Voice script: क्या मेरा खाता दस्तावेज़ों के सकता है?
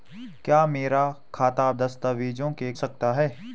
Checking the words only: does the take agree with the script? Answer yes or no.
yes